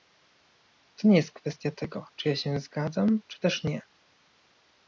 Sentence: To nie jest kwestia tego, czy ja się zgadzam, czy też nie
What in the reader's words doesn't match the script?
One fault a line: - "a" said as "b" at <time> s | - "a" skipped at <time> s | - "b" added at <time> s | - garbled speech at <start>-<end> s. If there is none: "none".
none